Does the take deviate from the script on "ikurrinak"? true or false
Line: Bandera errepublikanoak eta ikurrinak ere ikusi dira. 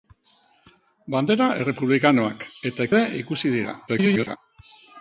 true